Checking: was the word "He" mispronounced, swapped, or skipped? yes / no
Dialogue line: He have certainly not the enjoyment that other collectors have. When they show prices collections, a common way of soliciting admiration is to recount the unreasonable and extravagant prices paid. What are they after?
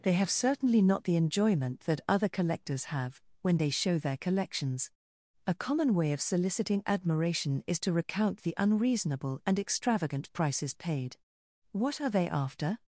yes